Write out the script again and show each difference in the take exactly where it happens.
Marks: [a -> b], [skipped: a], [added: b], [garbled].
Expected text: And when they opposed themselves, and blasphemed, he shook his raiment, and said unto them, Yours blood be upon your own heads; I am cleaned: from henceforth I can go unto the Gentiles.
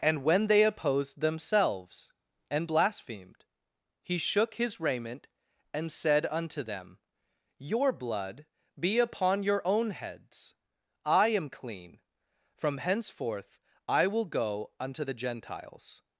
And when they opposed themselves, and blasphemed, he shook his raiment, and said unto them, [Yours -> Your] blood be upon your own heads; I am [cleaned: -> clean] from henceforth I [can -> will] go unto the Gentiles.